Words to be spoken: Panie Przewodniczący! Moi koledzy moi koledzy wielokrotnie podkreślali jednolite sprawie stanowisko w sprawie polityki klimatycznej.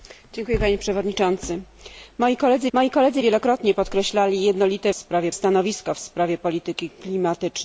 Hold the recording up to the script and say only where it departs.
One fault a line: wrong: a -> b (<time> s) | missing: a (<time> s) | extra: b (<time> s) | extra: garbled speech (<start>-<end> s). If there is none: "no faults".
no faults